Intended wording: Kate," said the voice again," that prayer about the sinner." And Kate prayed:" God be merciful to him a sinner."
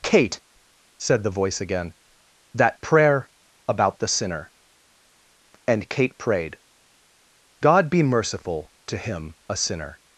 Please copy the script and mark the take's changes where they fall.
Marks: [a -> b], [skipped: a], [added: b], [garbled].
Kate," said the voice again," that prayer about the sinner." And Kate prayed:" God be merciful to him a sinner."